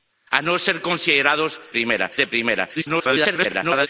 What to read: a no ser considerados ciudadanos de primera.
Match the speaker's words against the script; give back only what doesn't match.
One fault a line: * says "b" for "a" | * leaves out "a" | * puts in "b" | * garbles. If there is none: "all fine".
* says "primera" for "ciudadanos"
* garbles